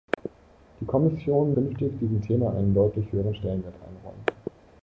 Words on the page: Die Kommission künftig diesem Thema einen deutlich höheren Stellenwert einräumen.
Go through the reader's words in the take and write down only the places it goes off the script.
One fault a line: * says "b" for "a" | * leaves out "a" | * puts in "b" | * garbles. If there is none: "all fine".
all fine